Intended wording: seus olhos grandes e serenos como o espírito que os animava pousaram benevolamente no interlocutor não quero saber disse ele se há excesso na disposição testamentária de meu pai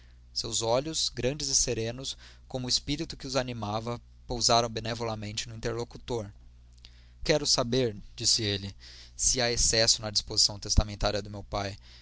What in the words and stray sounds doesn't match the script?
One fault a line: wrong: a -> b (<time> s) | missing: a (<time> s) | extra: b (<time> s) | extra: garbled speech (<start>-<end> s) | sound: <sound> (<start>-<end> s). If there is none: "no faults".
missing: não (6.3 s)